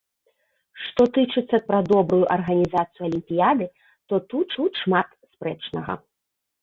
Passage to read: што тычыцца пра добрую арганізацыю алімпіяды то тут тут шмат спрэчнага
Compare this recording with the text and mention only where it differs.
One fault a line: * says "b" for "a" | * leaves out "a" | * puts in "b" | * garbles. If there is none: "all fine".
all fine